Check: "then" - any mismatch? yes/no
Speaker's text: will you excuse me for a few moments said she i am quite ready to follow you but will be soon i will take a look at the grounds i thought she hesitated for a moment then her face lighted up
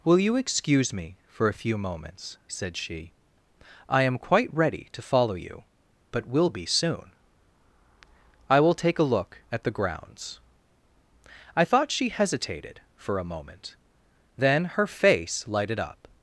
no